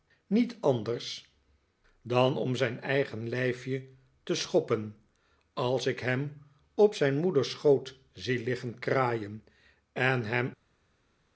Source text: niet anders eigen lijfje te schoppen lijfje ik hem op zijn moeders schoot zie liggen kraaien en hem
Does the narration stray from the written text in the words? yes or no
yes